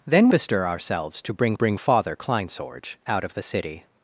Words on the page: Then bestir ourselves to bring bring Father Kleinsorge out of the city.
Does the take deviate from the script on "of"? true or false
false